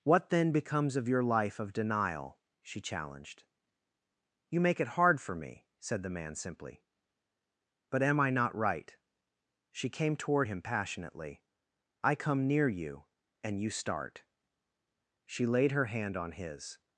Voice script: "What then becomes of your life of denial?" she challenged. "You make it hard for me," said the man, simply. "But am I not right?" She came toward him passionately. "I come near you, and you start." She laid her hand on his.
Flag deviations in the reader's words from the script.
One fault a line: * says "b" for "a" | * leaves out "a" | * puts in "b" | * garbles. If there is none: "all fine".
all fine